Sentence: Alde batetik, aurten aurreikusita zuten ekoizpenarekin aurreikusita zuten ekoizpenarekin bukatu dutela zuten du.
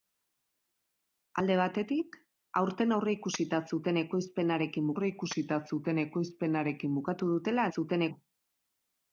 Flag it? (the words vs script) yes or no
no